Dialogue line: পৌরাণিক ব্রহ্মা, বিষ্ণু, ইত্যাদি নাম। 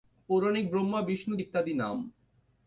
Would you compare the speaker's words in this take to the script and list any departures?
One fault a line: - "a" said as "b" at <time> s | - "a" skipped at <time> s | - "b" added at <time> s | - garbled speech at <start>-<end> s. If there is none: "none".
none